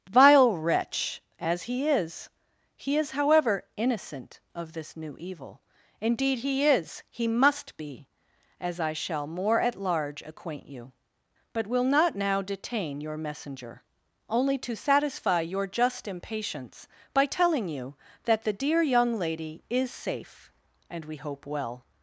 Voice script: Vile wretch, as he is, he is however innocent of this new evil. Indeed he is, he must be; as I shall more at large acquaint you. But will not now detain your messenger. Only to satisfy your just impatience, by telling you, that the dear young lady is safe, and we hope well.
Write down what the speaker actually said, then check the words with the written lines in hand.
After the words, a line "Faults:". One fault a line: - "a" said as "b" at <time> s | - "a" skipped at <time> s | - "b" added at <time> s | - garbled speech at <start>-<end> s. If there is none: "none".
Vile wretch, as he is, he is however innocent of this new evil. Indeed he is, he must be; as I shall more at large acquaint you. But will not now detain your messenger. Only to satisfy your just impatience, by telling you, that the dear young lady is safe, and we hope well.
Faults:
none